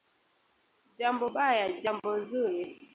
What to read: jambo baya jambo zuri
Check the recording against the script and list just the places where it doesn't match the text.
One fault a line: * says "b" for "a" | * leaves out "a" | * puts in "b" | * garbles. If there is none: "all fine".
all fine